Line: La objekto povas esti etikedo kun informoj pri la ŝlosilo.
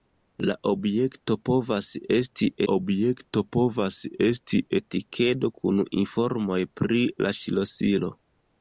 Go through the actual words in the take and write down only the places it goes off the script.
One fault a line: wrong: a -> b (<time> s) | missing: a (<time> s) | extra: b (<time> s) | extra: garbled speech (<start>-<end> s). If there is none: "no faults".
extra: objekto povas esti (2.7 s)